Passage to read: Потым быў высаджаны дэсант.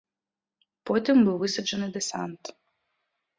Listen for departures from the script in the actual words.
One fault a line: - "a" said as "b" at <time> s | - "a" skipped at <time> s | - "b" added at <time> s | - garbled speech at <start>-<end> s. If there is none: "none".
none